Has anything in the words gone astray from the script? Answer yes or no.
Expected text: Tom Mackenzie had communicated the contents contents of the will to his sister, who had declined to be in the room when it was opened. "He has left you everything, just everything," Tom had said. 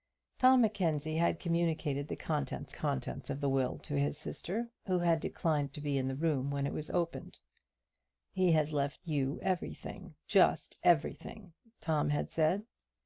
no